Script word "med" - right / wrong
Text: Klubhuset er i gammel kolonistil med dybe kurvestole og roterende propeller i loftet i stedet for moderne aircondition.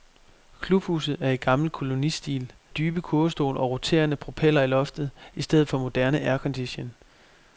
wrong